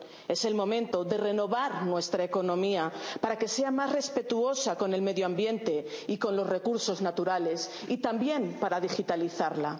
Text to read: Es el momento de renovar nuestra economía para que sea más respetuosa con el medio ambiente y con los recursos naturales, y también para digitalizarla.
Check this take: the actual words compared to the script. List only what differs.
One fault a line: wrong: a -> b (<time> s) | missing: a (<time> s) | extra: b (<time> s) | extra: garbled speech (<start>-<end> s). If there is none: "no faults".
no faults